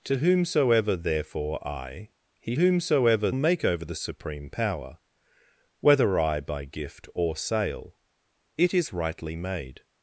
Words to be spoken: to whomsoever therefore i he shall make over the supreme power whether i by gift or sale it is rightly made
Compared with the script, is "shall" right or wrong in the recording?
wrong